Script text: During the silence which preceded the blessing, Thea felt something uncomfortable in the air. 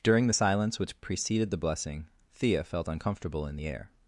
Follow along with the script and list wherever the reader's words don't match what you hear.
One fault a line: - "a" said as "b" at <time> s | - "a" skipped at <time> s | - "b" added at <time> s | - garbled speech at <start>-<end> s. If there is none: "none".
- "something" skipped at 2.9 s